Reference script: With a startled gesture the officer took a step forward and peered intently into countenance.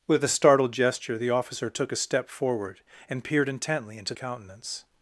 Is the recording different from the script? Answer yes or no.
no